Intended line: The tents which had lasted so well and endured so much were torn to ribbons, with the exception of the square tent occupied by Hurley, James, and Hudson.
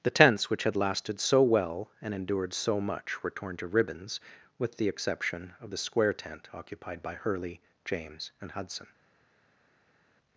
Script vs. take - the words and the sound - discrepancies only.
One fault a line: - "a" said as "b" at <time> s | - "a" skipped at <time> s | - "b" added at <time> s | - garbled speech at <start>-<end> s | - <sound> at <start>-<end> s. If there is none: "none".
none